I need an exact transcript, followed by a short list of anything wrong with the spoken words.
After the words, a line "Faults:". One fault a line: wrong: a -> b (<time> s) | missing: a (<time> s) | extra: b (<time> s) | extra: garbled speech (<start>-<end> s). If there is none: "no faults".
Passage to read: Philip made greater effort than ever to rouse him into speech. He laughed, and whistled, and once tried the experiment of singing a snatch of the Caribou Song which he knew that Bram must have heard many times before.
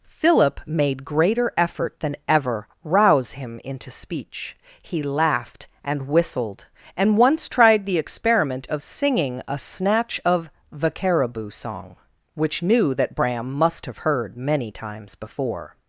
Philip made greater effort than ever rouse him into speech. He laughed, and whistled, and once tried the experiment of singing a snatch of the Caribou Song which knew that Bram must have heard many times before.
Faults:
missing: to (2.7 s)
missing: he (12.6 s)